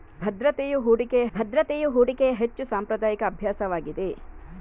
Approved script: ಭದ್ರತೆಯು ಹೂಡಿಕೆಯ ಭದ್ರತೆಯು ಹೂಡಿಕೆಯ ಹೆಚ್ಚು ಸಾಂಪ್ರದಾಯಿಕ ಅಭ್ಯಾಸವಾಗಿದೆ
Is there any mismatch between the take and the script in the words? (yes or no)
no